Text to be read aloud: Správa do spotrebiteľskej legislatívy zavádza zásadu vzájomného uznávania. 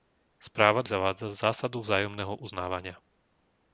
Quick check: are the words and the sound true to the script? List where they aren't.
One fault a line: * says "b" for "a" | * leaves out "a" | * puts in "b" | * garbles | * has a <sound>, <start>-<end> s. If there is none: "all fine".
* leaves out "spotrebiteľskej legislatívy"